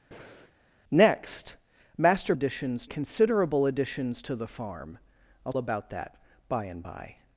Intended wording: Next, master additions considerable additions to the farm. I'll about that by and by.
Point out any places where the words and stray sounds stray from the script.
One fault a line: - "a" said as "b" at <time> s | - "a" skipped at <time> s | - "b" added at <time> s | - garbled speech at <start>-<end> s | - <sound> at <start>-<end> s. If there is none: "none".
- breath at 0.1-0.5 s